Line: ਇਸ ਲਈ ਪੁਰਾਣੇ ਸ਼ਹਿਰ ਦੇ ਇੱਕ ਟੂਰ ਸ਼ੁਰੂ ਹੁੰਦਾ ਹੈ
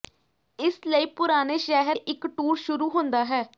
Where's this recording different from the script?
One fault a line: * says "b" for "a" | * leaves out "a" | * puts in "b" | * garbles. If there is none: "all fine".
* leaves out "ਦੇ"